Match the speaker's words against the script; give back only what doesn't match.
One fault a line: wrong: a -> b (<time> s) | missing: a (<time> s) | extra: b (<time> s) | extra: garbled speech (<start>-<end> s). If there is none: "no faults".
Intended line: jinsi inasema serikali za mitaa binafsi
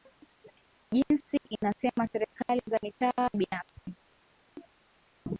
no faults